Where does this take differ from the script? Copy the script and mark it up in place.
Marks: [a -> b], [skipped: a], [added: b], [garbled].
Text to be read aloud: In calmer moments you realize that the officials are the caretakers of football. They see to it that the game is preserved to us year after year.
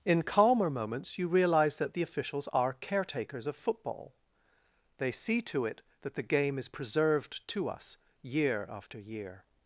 In calmer moments you realize that the officials are [skipped: the] caretakers of football. They see to it that the game is preserved to us year after year.